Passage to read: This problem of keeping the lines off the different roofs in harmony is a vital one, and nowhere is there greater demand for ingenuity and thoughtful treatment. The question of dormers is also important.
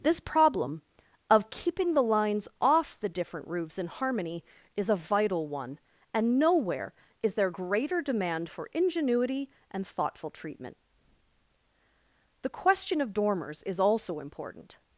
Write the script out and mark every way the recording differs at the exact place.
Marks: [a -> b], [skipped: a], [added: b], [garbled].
This problem of keeping the lines off the different roofs in harmony is a vital one, and nowhere is there greater demand for ingenuity and thoughtful treatment. The question of dormers is also important.